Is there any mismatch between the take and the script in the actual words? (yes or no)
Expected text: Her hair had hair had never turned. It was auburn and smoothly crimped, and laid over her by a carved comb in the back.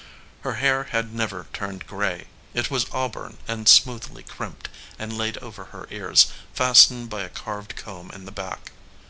yes